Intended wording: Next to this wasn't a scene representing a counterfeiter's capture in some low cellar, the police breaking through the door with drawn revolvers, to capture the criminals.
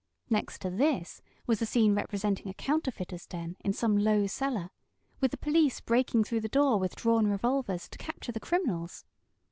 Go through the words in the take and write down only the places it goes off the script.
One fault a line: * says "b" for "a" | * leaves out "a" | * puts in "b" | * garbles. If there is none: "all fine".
* says "was" for "wasn't"
* says "den" for "capture"
* puts in "with"